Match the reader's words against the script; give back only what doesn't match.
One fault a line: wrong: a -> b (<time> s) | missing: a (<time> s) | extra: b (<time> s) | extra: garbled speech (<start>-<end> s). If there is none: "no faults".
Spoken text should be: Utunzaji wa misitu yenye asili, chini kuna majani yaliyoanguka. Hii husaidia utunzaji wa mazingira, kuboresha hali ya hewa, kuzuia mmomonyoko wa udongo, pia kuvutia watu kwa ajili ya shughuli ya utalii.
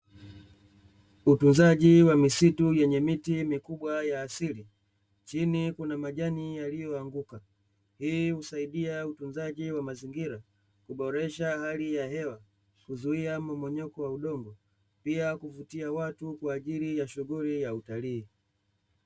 extra: miti mikubwa ya (3.0 s)